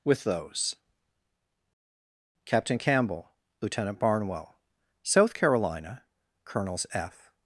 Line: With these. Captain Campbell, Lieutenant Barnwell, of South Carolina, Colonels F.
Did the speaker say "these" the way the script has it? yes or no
no